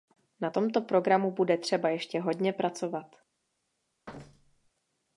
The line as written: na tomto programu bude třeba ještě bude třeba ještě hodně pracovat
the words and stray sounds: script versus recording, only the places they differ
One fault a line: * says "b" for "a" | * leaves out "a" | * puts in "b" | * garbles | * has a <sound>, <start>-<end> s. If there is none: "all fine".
* leaves out "bude třeba ještě"
* has a thud, 4.1-4.7 s